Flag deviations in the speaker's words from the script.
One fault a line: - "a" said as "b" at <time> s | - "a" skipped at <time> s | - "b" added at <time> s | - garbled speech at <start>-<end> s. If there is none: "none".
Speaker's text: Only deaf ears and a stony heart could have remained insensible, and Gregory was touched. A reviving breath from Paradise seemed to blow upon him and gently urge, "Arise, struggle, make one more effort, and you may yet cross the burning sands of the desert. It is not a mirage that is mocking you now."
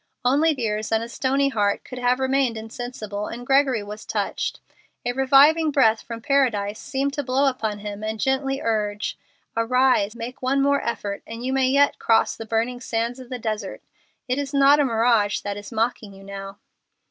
- "deaf" skipped at 0.6 s
- "struggle" skipped at 10.1 s